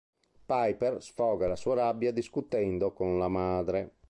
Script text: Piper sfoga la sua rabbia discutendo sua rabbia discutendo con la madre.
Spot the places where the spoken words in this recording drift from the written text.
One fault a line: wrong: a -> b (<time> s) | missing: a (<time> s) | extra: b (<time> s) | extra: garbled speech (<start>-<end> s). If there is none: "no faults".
missing: sua rabbia discutendo (2.9 s)